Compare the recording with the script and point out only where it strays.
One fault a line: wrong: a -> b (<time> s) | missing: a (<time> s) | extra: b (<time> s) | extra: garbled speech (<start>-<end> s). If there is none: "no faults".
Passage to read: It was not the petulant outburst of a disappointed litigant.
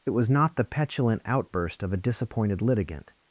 no faults